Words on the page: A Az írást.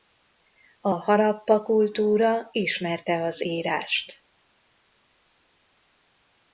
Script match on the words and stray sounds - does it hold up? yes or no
no